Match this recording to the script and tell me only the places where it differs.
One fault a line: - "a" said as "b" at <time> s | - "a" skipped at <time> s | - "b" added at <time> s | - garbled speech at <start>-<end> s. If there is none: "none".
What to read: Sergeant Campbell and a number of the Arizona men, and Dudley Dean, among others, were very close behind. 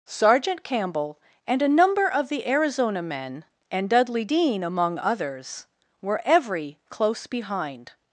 - "very" said as "every" at 6.2 s